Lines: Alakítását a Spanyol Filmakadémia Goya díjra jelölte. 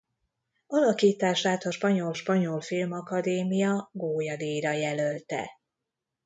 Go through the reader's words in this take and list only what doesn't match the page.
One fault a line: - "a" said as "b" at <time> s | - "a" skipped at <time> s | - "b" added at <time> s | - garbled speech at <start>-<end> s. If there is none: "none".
- "Spanyol" added at 2.1 s